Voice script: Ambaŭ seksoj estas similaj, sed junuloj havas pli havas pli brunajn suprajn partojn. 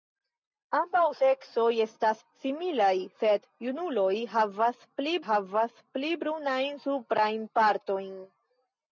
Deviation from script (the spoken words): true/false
false